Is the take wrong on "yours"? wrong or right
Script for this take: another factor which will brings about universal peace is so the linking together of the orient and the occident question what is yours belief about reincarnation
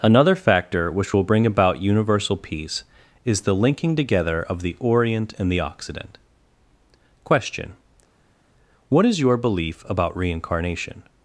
wrong